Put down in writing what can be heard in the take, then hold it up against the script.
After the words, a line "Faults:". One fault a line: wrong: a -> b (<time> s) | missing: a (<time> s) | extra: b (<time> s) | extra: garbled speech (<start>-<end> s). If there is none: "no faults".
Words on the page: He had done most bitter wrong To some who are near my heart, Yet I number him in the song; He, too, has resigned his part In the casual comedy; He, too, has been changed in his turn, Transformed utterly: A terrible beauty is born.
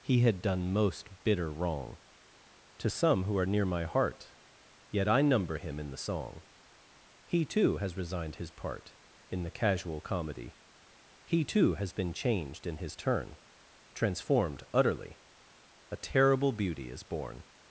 He had done most bitter wrong To some who are near my heart, Yet I number him in the song; He, too, has resigned his part In the casual comedy; He, too, has been changed in his turn, Transformed utterly: A terrible beauty is born.
Faults:
no faults